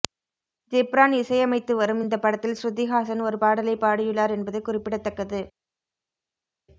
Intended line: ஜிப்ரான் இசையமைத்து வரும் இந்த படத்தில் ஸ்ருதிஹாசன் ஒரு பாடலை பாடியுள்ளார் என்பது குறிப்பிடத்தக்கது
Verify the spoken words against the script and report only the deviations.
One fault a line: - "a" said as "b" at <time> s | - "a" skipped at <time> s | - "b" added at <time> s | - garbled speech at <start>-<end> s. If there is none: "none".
none